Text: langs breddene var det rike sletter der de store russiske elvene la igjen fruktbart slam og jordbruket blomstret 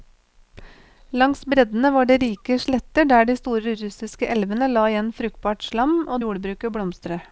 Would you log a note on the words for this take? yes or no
no